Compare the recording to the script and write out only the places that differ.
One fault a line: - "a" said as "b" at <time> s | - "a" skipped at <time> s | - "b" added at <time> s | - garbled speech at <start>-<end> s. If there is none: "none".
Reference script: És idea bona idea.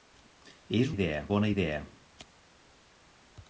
none